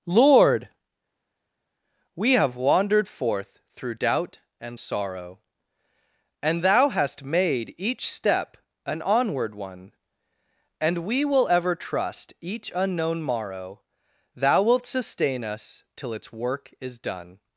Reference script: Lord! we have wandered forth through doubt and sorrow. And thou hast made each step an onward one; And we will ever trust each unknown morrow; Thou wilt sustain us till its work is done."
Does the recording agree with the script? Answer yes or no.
yes